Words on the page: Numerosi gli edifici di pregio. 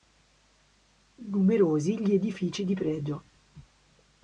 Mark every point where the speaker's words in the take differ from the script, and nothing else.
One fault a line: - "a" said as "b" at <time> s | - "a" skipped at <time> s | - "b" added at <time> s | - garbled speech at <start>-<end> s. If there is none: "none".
none